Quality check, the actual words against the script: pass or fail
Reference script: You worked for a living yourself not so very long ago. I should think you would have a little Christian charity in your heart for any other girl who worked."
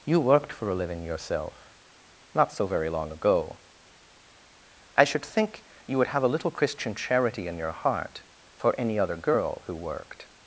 pass